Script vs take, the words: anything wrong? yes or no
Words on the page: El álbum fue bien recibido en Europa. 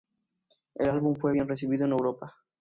no